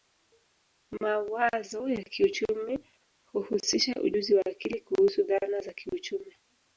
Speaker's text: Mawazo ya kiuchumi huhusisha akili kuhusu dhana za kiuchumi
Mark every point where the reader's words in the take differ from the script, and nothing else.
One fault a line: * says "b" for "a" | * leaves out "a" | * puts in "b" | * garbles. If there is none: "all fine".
* puts in "ujuzi wa"